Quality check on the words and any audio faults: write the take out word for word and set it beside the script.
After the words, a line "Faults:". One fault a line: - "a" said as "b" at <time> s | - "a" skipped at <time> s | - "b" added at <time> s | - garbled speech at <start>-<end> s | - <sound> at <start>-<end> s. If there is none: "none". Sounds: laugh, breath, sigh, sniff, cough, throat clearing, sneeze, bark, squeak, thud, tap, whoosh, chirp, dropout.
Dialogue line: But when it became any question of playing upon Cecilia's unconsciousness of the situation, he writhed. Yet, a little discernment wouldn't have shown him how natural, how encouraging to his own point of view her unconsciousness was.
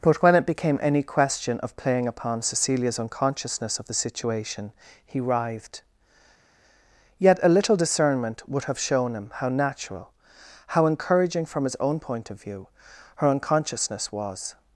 But when it became any question of playing upon Cecilia's unconsciousness of the situation, he writhed. Yet, a little discernment would have shown him how natural, how encouraging from his own point of view her unconsciousness was.
Faults:
- "wouldn't" said as "would" at 8.5 s
- "to" said as "from" at 11.4 s